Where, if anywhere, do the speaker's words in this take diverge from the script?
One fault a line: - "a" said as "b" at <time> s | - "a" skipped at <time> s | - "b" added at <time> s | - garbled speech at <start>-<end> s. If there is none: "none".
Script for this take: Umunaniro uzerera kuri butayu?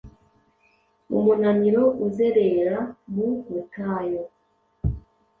- "kuri" said as "mu" at 3.1 s